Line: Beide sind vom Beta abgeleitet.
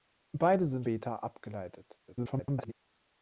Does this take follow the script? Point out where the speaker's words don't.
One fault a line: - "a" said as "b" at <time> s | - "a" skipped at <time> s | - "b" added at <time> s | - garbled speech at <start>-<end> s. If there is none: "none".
- "vom" skipped at 0.9 s
- garbled speech at 2.1-2.7 s